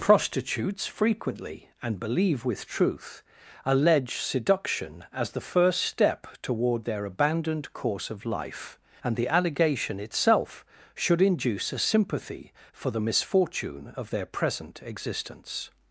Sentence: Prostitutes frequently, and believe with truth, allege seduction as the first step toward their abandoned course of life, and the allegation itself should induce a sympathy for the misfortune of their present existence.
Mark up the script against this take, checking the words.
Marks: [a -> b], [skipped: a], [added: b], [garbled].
Prostitutes frequently, and believe with truth, allege seduction as the first step toward their abandoned course of life, and the allegation itself should induce a sympathy for the misfortune of their present existence.